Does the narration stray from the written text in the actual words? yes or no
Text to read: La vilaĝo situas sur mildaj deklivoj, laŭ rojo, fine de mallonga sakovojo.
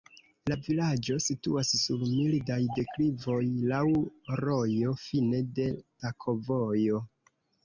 yes